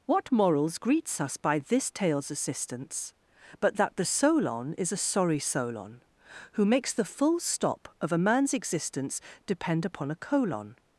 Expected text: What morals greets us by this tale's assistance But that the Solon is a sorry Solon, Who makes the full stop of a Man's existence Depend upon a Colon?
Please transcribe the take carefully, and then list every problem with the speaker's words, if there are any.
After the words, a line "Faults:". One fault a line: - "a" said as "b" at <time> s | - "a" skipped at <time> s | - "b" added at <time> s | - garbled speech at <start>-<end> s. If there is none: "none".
What morals greets us by this tale's assistance But that the Solon is a sorry Solon, Who makes the full stop of a Man's existence Depend upon a Colon?
Faults:
none